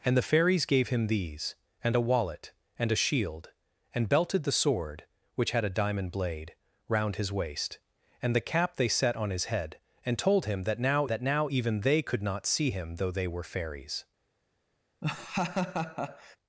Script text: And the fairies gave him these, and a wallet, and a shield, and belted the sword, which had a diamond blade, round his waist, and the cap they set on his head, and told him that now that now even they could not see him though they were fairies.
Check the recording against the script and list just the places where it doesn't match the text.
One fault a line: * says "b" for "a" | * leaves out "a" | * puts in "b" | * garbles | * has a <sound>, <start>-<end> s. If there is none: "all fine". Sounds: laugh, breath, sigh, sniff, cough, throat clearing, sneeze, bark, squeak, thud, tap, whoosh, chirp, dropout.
* has a laugh, 15.0-16.4 s